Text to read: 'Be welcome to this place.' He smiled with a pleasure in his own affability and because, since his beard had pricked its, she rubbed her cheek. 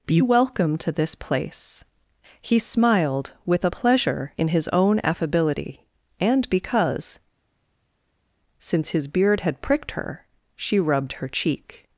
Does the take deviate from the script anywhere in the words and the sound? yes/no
yes